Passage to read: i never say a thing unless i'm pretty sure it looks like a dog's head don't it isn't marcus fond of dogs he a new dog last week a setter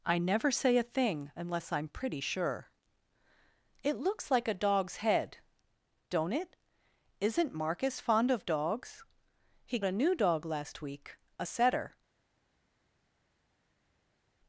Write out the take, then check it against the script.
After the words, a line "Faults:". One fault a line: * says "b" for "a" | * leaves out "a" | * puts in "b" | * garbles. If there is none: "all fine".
i never say a thing unless i'm pretty sure it looks like a dog's head don't it isn't marcus fond of dogs he a new dog last week a setter
Faults:
all fine